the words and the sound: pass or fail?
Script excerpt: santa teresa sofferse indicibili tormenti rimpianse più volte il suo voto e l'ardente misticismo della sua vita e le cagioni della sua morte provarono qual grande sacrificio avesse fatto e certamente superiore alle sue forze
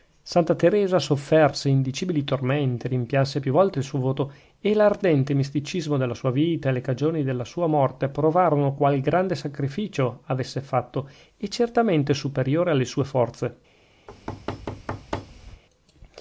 fail